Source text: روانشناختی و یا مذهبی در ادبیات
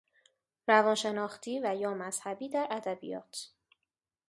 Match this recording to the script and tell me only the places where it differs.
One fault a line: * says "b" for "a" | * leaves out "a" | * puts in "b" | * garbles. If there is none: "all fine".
all fine